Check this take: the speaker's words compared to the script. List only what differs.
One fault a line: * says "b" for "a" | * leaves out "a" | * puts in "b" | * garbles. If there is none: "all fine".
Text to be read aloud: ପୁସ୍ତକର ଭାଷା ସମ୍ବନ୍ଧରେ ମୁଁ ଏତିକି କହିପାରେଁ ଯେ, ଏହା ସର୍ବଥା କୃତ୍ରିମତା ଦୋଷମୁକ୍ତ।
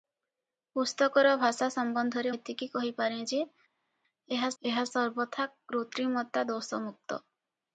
* leaves out "ମୁଁ"
* puts in "ଏହା"